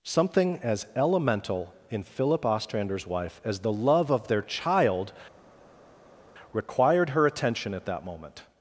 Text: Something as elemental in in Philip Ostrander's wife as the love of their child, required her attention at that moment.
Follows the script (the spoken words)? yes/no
no